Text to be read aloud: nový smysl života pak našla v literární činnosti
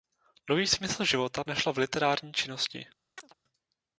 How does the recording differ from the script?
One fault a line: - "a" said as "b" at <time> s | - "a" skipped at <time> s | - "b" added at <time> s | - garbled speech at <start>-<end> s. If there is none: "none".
- "pak" skipped at 1.4 s